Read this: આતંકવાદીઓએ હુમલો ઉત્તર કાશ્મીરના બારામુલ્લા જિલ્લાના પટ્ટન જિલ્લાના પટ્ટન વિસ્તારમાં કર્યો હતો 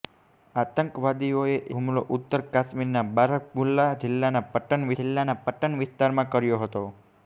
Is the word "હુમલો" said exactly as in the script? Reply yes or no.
yes